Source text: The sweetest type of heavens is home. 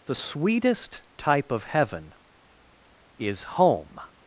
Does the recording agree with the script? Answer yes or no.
no